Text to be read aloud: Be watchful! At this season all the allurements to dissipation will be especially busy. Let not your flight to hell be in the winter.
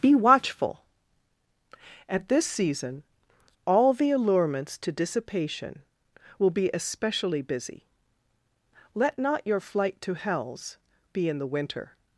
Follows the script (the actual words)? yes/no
no